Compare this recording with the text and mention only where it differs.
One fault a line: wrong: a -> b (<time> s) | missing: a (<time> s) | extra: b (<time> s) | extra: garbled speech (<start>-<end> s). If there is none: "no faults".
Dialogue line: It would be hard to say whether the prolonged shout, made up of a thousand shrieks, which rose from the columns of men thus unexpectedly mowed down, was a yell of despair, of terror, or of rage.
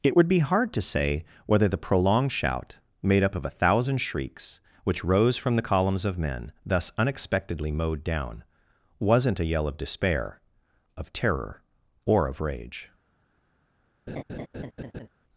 wrong: was -> wasn't (9.0 s)